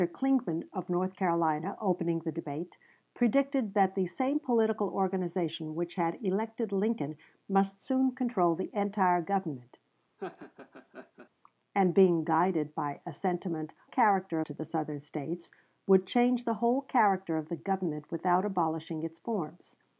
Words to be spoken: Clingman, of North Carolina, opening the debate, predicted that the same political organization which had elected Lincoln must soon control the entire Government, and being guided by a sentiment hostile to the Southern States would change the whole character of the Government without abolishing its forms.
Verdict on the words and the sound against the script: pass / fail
fail